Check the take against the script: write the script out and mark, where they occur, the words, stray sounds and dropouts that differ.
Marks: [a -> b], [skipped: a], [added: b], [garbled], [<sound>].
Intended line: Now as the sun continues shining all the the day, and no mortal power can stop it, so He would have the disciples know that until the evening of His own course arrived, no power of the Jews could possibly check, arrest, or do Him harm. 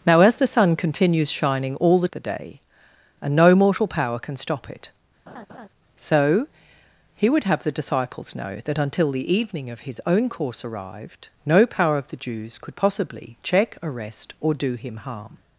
Now as the sun continues shining all the the day, and no mortal power can stop it, [laugh] so He would have the disciples know that until the evening of His own course arrived, no power of the Jews could possibly check, arrest, or do Him harm.